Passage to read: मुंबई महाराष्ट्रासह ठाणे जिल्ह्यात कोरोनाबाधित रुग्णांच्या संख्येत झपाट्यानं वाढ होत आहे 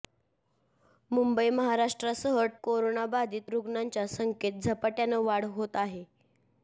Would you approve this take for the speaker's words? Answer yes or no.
no